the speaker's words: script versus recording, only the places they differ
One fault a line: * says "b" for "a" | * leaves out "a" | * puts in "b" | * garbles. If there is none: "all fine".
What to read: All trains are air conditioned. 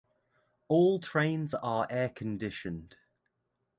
all fine